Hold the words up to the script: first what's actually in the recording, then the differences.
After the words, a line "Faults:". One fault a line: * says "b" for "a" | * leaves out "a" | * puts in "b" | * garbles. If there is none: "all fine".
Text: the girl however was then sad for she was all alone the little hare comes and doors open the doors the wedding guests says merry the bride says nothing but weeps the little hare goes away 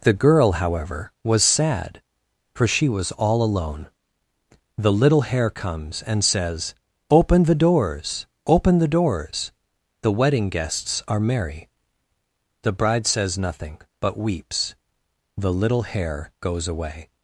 the girl however was sad for she was all alone the little hare comes and says open the doors open the doors the wedding guests are merry the bride says nothing but weeps the little hare goes away
Faults:
* leaves out "then"
* puts in "says open the"
* says "are" for "says"